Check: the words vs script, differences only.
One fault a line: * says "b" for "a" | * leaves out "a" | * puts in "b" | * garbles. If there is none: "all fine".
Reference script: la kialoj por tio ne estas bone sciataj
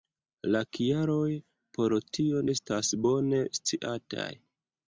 * leaves out "ne"